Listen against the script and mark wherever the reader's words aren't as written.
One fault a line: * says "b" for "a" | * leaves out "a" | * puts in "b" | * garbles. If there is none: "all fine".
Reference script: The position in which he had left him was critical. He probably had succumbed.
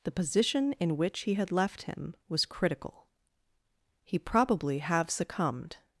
* says "have" for "had"